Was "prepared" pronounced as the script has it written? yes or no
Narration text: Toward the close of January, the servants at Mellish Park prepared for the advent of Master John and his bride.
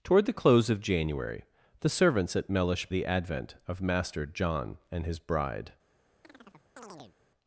no